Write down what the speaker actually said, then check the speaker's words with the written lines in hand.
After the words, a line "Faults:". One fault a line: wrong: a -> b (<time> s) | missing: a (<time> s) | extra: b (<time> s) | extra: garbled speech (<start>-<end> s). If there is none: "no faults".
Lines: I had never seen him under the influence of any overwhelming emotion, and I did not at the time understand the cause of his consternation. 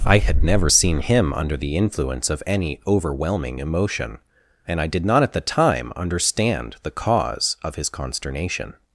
I had never seen him under the influence of any overwhelming emotion, and I did not at the time understand the cause of his consternation.
Faults:
no faults